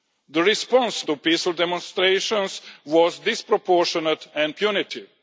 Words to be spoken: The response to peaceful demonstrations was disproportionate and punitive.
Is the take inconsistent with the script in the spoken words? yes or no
no